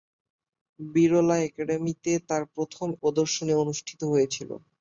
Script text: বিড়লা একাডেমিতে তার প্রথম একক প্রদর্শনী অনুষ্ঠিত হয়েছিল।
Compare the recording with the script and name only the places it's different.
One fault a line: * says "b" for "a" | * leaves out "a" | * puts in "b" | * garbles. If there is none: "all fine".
* leaves out "একক"